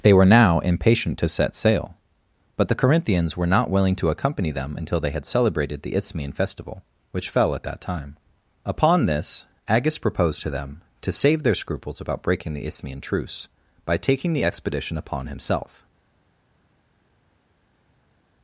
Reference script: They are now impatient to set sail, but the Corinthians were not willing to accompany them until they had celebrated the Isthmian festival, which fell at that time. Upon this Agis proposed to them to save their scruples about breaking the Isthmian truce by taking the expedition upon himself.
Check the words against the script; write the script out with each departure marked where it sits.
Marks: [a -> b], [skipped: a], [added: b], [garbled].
They [are -> were] now impatient to set sail, but the Corinthians were not willing to accompany them until they had celebrated the Isthmian festival, which fell at that time. Upon this Agis proposed to them to save their scruples about breaking the Isthmian truce by taking the expedition upon himself.